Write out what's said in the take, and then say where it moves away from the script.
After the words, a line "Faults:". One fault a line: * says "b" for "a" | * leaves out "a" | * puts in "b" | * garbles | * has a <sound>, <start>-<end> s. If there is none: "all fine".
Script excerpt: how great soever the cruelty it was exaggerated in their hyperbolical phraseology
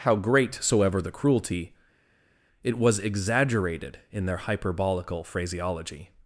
how great soever the cruelty it was exaggerated in their hyperbolical phraseology
Faults:
all fine